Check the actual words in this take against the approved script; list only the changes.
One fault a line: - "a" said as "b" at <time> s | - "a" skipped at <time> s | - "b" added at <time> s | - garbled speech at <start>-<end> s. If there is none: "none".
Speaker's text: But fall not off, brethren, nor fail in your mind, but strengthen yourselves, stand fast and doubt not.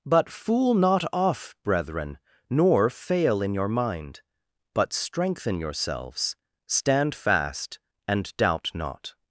- "fall" said as "fool" at 0.3 s